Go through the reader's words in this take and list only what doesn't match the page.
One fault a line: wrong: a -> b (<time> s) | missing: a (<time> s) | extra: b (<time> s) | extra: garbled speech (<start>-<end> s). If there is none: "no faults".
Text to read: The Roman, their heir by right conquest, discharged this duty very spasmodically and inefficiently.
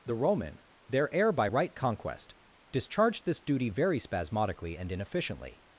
no faults